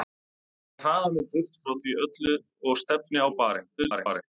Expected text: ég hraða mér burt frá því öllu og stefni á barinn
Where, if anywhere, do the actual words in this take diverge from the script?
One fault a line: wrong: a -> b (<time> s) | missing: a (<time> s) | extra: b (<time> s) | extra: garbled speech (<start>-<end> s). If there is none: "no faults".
extra: garbled speech (3.8-4.2 s)